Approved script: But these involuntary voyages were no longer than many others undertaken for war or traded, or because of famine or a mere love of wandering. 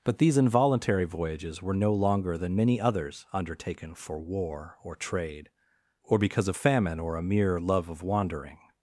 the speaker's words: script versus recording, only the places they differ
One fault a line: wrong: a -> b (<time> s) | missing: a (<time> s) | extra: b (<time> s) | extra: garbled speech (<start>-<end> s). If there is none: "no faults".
wrong: traded -> trade (5.0 s)